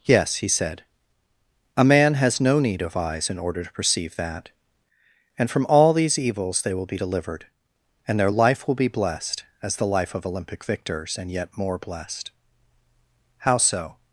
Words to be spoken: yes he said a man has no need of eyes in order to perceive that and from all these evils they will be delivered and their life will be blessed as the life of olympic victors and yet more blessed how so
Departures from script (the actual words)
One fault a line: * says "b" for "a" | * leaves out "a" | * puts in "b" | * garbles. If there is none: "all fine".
all fine